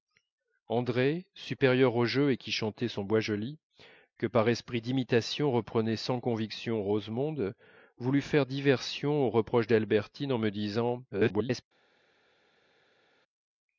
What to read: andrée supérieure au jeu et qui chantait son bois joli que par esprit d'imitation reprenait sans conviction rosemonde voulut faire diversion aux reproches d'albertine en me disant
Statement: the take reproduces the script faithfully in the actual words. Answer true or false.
false